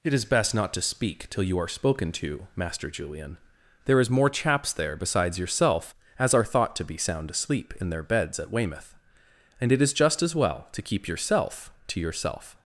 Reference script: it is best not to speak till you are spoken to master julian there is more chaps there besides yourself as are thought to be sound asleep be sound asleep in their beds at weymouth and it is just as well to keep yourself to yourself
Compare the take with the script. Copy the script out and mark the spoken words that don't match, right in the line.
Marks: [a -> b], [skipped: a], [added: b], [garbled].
it is best not to speak till you are spoken to master julian there is more chaps there besides yourself as are thought to be sound asleep [skipped: be sound asleep] in their beds at weymouth and it is just as well to keep yourself to yourself